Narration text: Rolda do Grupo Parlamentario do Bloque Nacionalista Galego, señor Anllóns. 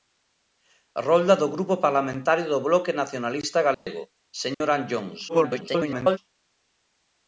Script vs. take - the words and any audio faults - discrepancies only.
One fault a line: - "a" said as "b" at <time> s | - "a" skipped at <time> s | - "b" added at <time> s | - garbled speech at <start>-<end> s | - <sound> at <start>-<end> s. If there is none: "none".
- dropout at 3.7-3.9 s
- dropout at 4.5-4.6 s
- garbled speech at 5.3-6.2 s